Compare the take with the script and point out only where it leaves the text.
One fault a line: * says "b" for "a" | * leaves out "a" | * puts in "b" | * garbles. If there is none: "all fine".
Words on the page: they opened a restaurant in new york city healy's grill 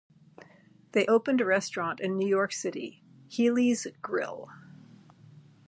all fine